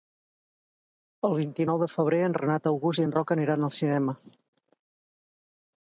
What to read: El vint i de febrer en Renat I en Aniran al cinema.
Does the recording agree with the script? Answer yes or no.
no